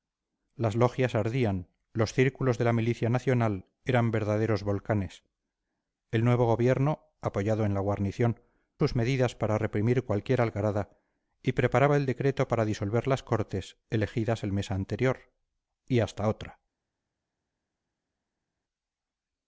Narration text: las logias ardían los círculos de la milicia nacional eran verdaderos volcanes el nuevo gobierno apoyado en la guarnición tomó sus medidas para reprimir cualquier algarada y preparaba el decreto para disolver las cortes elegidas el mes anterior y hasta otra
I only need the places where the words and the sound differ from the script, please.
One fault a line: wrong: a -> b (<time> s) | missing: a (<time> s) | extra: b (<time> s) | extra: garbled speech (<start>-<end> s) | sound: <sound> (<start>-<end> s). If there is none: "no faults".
missing: tomó (8.4 s)